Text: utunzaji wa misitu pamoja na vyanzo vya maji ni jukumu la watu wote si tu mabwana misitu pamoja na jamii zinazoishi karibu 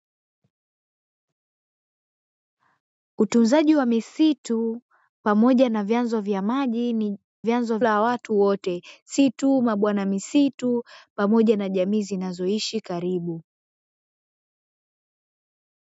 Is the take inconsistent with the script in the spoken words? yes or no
yes